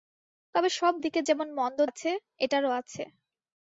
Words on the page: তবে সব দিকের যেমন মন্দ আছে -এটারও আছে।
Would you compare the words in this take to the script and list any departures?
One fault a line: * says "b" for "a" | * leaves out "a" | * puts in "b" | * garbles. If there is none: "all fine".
all fine